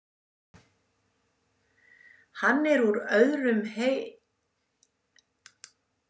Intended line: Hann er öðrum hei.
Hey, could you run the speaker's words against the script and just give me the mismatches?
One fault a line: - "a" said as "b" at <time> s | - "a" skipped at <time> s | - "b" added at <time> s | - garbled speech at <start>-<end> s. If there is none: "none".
- "úr" added at 2.9 s